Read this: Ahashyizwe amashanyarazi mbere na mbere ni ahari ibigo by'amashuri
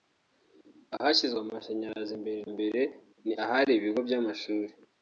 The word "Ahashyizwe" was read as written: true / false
true